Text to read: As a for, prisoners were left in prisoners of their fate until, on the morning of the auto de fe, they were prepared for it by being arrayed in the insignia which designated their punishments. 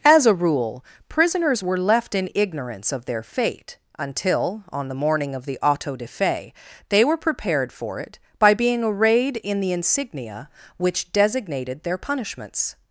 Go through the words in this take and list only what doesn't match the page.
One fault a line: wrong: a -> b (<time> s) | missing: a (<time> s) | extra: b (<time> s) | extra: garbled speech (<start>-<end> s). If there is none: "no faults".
wrong: for -> rule (0.3 s)
wrong: prisoners -> ignorance (2.3 s)